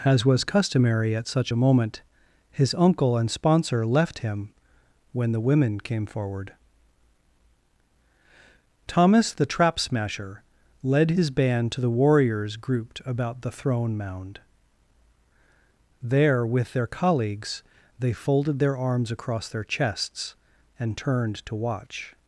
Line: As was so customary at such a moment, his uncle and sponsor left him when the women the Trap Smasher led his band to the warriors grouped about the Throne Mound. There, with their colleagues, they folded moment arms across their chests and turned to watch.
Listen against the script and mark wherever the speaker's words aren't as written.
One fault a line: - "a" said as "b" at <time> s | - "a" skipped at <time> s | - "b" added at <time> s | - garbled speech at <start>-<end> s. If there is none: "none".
- "so" skipped at 0.4 s
- "came forward Thomas" added at 5.8 s
- "moment" said as "their" at 18.6 s